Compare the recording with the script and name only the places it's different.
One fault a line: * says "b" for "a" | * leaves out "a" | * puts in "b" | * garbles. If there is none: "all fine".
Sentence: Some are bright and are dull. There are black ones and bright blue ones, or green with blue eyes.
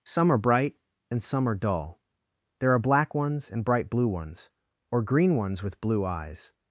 * puts in "some"
* puts in "ones"